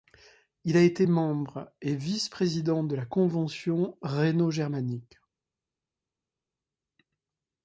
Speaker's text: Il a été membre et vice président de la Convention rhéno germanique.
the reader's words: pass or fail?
pass